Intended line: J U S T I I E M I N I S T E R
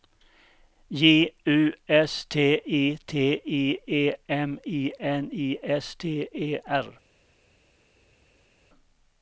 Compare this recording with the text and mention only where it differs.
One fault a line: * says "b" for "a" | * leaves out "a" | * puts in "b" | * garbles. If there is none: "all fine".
* puts in "T"